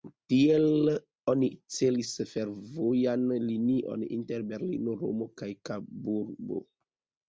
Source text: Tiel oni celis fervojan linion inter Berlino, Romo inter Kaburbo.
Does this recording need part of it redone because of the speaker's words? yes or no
yes